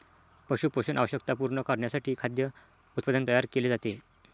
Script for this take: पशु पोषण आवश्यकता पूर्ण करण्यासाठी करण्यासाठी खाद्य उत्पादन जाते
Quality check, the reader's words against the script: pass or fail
fail